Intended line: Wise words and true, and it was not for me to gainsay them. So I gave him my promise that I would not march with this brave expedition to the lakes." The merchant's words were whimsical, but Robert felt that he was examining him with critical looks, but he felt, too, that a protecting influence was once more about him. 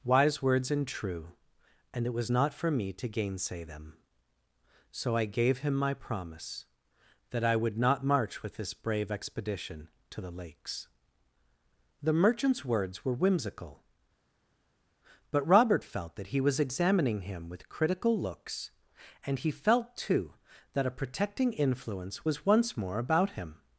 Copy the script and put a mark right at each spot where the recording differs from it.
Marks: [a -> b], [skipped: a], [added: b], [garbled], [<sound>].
Wise words and true, and it was not for me to gainsay them. So I gave him my promise that I would not march with this brave expedition to the lakes." The merchant's words were whimsical, but Robert felt that he was examining him with critical looks, [but -> and] he felt, too, that a protecting influence was once more about him.